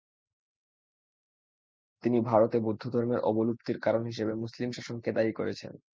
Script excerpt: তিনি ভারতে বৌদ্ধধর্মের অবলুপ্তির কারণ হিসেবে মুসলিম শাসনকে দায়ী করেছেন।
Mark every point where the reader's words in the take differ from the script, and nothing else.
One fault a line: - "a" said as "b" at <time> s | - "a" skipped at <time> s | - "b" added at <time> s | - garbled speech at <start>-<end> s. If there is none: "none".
none